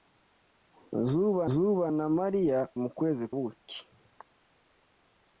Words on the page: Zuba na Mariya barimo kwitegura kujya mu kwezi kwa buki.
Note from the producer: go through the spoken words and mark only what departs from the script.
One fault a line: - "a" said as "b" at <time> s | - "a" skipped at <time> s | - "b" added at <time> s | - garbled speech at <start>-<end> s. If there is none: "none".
- "zuba" added at 1.5 s
- "barimo kwitegura kujya" skipped at 2.6 s
- "kwa" skipped at 3.2 s